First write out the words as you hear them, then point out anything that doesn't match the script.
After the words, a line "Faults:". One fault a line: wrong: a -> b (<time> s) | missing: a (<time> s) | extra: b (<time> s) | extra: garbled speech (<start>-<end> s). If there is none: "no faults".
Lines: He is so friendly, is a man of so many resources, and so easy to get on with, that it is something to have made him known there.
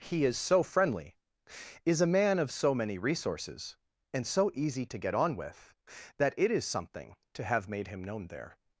He is so friendly, is a man of so many resources, and so easy to get on with, that it is something to have made him known there.
Faults:
no faults